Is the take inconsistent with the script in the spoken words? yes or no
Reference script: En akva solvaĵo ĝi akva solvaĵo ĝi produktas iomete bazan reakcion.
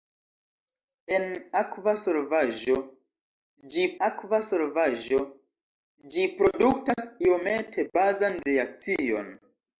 no